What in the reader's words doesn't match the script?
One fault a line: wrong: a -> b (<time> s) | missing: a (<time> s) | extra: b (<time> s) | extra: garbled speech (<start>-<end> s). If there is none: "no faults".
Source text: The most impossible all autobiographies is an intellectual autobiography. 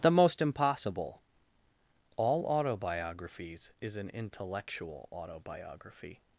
no faults